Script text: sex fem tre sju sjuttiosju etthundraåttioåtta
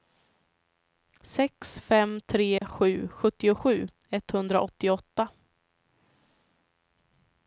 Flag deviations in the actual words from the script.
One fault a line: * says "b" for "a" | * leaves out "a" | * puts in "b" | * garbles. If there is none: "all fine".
all fine